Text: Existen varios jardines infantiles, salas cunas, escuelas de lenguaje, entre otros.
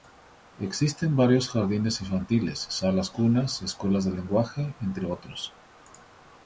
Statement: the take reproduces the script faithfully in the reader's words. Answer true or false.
true